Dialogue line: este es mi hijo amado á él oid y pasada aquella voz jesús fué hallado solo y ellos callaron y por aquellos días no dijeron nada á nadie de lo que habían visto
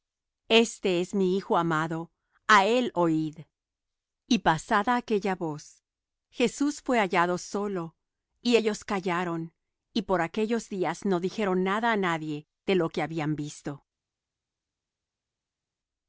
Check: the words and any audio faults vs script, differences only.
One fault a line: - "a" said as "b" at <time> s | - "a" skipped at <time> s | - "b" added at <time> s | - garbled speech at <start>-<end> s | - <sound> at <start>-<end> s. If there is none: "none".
none